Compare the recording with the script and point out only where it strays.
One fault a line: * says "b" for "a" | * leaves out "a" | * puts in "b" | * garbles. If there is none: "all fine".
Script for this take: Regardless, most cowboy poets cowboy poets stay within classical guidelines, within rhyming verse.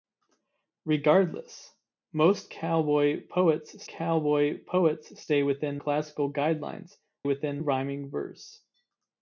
all fine